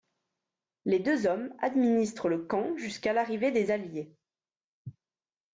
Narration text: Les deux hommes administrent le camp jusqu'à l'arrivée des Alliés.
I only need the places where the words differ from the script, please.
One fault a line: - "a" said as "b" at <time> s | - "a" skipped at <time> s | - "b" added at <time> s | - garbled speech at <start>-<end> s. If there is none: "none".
none